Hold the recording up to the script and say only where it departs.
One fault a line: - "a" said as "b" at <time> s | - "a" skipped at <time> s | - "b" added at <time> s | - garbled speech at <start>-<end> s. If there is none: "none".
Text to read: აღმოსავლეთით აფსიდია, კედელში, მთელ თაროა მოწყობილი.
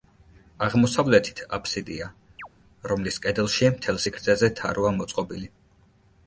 - "რომლის" added at 2.9 s
- "სიგრძეზე" added at 4.0 s